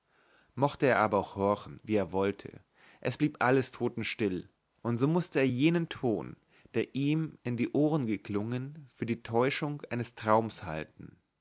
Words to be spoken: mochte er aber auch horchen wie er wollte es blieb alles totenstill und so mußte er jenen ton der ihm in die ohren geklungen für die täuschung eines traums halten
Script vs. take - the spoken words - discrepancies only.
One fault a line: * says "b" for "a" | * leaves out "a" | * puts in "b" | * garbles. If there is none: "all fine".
all fine